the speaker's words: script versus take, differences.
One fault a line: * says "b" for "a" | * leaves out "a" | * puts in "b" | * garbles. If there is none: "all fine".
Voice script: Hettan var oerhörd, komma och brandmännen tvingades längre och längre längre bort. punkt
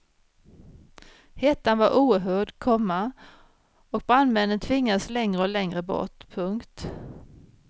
* leaves out "längre"